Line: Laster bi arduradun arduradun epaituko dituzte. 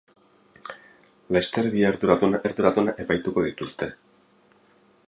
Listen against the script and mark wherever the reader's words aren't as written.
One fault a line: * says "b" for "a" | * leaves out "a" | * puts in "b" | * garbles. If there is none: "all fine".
all fine